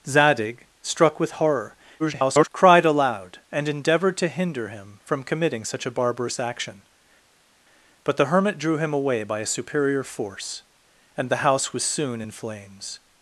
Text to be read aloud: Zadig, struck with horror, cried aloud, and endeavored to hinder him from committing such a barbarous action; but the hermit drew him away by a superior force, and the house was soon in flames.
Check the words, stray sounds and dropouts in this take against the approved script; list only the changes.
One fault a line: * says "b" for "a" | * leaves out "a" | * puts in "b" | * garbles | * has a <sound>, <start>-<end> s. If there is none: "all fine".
* garbles